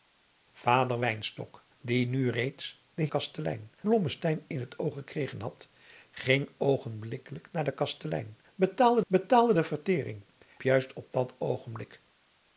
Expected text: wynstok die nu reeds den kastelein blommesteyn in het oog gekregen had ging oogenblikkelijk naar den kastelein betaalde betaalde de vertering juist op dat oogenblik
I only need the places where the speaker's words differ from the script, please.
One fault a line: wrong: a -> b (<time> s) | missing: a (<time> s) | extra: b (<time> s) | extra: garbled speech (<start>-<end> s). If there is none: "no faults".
no faults